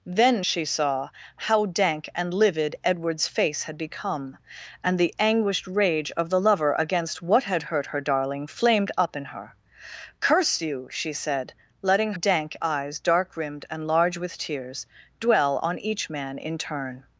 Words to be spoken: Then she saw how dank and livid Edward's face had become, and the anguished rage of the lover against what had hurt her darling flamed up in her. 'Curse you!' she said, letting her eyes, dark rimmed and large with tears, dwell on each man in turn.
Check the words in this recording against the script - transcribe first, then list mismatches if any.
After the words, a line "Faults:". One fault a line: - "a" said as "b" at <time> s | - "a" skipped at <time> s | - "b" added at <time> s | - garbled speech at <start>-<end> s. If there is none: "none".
Then she saw how dank and livid Edward's face had become, and the anguished rage of the lover against what had hurt her darling flamed up in her. 'Curse you!' she said, letting dank eyes, dark rimmed and large with tears, dwell on each man in turn.
Faults:
- "her" said as "dank" at 12.1 s